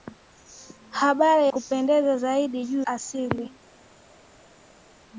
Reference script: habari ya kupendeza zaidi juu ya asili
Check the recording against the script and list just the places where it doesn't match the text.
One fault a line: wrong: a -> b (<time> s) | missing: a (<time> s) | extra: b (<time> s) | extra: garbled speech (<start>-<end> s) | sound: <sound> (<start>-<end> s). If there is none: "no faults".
missing: ya (1.5 s)
missing: ya (2.9 s)